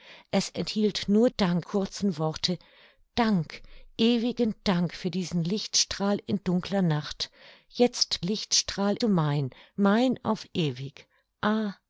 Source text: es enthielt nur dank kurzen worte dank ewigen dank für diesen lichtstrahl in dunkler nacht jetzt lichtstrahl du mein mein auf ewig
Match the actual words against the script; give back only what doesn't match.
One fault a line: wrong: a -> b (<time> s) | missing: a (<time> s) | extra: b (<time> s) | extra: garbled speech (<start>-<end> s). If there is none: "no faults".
no faults